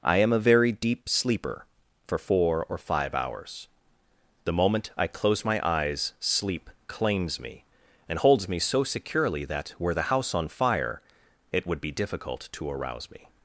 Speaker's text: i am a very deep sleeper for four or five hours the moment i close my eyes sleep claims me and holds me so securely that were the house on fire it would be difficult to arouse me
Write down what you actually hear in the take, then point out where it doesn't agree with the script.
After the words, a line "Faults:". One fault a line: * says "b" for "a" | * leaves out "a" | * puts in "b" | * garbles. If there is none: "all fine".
i am a very deep sleeper for four or five hours the moment i close my eyes sleep claims me and holds me so securely that were the house on fire it would be difficult to arouse me
Faults:
all fine